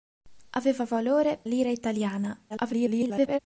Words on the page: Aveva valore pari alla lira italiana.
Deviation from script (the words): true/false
true